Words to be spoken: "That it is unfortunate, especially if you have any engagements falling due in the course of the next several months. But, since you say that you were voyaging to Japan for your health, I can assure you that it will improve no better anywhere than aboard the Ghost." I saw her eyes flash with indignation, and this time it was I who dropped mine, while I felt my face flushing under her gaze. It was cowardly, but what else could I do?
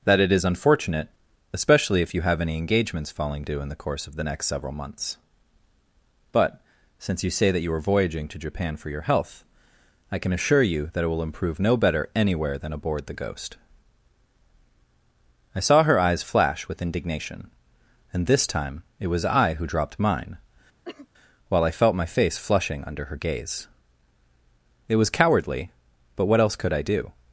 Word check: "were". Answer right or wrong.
wrong